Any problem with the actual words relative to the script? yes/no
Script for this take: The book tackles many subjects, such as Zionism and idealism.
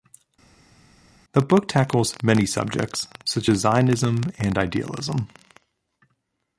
no